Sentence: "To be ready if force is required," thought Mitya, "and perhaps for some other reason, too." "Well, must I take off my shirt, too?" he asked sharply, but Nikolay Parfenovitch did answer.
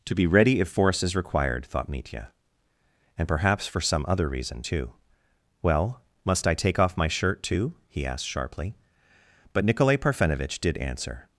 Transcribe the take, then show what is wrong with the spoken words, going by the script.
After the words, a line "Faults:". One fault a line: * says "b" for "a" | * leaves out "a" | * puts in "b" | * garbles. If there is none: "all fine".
"To be ready if force is required," thought Mitya, "and perhaps for some other reason, too." "Well, must I take off my shirt, too?" he asked sharply, but Nikolay Parfenovitch did answer.
Faults:
all fine